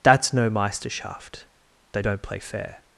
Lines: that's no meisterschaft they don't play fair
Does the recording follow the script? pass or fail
pass